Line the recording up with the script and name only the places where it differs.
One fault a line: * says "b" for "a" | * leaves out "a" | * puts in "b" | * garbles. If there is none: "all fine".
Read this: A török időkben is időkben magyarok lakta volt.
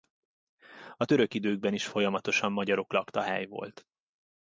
* says "folyamatosan" for "időkben"
* puts in "hely"